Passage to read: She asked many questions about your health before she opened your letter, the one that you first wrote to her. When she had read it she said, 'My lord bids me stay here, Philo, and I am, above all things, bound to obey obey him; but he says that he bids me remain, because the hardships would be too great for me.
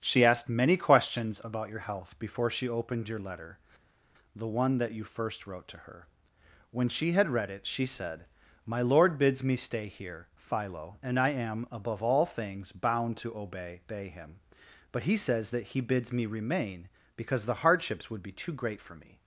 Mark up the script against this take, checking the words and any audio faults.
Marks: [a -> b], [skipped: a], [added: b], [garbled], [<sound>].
She asked many questions about your health before she opened your letter, the one that you first wrote to her. When she had read it she said, 'My lord bids me stay here, Philo, and I am, above all things, bound to obey obey him; but he says that he bids me remain, because the hardships would be too great for me.